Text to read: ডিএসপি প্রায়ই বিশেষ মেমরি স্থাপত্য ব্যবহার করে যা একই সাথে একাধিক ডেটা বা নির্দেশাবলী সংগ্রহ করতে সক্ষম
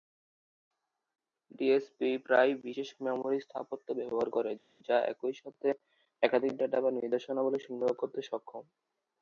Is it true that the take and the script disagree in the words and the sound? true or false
false